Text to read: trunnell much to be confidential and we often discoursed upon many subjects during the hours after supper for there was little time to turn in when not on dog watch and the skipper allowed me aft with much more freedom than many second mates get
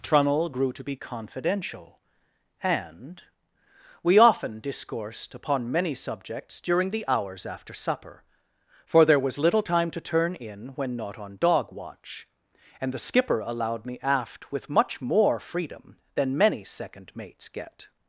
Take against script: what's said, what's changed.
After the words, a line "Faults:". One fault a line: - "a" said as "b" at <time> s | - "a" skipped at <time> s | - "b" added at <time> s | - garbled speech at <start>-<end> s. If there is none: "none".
trunnell grew to be confidential and we often discoursed upon many subjects during the hours after supper for there was little time to turn in when not on dog watch and the skipper allowed me aft with much more freedom than many second mates get
Faults:
- "much" said as "grew" at 0.5 s